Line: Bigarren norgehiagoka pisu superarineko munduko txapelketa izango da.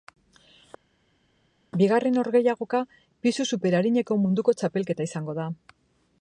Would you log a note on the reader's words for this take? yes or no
no